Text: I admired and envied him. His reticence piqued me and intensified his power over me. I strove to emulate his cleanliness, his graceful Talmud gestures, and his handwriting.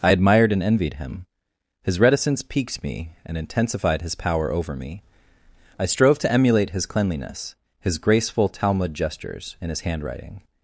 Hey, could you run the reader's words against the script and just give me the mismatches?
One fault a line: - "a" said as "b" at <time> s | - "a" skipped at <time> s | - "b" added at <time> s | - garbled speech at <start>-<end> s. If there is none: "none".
none